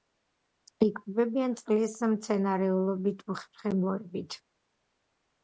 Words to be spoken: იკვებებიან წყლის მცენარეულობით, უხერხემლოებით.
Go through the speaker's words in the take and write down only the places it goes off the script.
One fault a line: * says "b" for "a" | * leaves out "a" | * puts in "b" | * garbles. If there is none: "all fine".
all fine